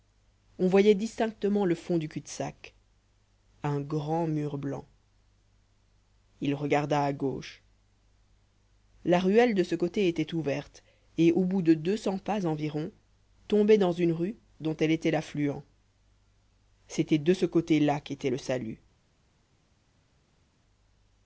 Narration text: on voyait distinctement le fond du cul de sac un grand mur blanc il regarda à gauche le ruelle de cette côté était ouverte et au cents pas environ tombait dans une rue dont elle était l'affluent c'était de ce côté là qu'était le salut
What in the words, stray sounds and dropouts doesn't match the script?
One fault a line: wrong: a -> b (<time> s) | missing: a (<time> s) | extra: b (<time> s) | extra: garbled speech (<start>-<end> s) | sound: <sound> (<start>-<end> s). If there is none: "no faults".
wrong: le -> la (9.1 s)
wrong: cette -> ce (9.6 s)
extra: bout de deux (11.4 s)